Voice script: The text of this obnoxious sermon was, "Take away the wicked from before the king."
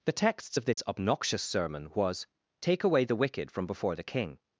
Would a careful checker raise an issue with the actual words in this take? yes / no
yes